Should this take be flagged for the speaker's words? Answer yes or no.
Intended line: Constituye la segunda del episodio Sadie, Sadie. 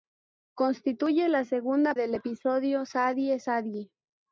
no